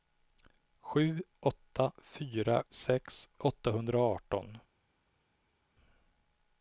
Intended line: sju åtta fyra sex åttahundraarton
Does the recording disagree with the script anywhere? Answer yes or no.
no